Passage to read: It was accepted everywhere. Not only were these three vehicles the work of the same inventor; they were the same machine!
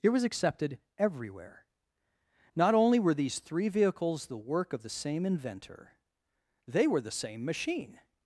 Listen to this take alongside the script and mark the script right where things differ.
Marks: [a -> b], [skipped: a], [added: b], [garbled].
It was accepted everywhere. Not only were these three vehicles the work of the same inventor; they were the same machine!